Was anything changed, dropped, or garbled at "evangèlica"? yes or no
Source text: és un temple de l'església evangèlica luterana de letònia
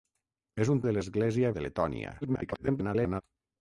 yes